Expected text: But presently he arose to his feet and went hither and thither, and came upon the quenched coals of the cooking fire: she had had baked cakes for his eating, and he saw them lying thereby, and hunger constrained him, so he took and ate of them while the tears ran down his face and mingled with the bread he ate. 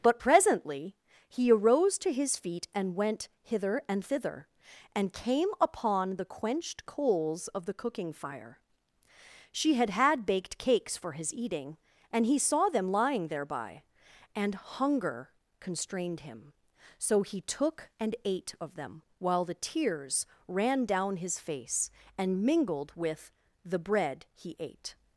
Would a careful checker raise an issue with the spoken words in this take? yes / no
no